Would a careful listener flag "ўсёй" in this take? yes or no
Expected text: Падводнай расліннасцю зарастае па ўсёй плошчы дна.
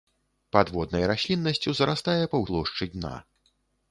yes